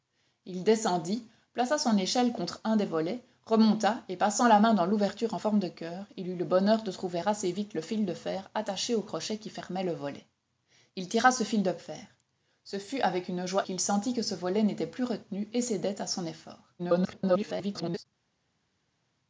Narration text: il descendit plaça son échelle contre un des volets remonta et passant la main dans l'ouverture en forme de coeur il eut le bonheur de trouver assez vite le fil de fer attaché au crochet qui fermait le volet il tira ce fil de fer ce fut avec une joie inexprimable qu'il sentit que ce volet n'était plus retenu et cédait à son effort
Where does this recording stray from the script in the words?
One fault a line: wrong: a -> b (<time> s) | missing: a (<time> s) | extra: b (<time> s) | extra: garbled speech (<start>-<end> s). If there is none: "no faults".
missing: inexprimable (13.7 s)
extra: garbled speech (16.8-18.1 s)